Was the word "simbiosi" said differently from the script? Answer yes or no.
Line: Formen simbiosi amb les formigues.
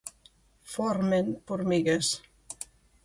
yes